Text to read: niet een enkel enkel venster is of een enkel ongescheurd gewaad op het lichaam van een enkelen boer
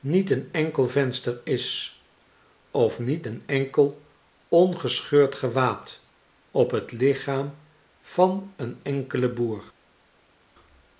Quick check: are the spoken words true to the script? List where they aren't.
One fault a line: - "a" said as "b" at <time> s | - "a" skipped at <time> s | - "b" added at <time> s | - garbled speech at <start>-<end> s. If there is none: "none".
- "enkel" skipped at 0.9 s
- "niet" added at 3.0 s